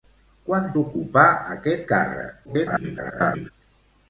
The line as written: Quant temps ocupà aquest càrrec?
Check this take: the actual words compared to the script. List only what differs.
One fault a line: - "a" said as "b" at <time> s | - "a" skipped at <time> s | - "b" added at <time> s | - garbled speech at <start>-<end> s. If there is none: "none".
- "temps" skipped at 0.6 s
- garbled speech at 2.5-3.5 s